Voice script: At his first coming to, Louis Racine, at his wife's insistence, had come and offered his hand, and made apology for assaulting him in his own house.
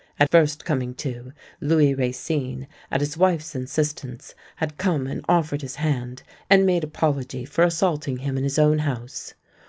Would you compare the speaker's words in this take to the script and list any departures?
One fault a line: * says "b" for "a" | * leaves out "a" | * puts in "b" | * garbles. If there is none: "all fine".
* leaves out "his"